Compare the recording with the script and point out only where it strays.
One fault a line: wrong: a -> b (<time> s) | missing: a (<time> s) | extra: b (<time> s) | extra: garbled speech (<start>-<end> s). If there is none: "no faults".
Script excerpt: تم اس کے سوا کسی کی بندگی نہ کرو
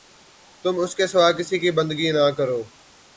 no faults